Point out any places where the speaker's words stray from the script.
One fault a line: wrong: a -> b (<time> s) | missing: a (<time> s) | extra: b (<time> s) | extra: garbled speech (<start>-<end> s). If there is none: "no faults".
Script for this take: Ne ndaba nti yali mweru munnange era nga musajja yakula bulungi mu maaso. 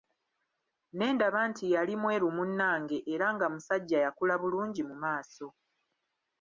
no faults